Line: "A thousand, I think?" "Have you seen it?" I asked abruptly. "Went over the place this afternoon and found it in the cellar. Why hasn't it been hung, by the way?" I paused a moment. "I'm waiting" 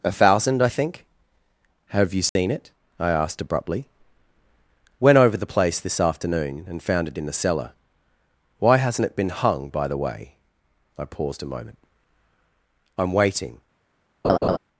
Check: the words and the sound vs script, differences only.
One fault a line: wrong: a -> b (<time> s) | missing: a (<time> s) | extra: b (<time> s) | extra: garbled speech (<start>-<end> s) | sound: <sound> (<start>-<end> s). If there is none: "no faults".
sound: dropout (2.3-2.4 s)
sound: laugh (14.2-14.6 s)